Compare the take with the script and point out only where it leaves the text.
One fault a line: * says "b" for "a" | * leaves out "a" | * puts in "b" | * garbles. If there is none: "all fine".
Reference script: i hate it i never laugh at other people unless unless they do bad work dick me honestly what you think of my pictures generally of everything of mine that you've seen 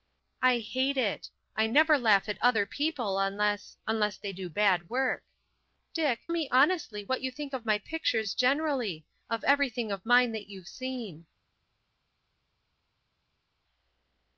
all fine